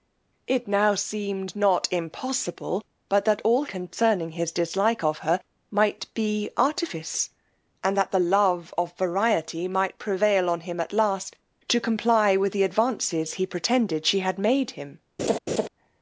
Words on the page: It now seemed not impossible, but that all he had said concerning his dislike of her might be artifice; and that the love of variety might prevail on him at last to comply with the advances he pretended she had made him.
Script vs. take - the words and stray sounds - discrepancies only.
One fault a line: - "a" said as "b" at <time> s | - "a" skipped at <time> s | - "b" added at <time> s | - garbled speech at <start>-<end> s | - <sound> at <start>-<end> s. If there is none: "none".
- "he had said" skipped at 3.6 s
- laugh at 15.2-15.7 s